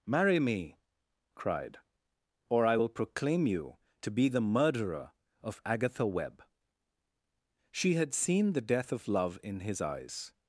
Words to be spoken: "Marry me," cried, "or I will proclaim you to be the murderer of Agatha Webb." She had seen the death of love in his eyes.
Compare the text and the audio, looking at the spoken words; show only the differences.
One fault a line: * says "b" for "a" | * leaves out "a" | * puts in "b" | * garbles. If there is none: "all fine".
all fine